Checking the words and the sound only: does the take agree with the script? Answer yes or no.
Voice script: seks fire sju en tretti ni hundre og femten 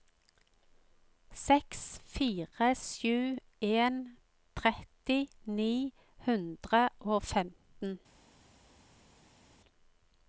yes